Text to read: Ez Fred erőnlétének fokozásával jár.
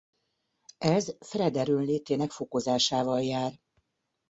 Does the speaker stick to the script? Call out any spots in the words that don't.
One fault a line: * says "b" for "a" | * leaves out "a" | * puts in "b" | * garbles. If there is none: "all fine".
all fine